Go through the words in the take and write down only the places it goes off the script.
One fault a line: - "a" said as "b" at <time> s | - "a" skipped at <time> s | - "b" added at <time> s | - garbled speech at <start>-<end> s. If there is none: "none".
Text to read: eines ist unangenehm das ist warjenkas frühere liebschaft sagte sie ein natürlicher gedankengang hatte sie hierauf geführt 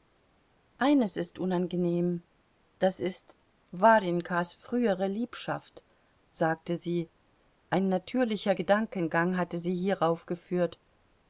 none